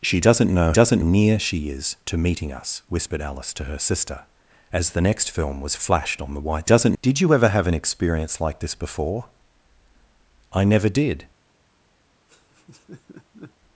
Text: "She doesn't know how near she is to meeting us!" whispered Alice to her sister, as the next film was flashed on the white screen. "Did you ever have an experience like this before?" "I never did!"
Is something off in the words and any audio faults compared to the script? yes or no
yes